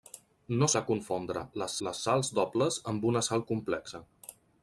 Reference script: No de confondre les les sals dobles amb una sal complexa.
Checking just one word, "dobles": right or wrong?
right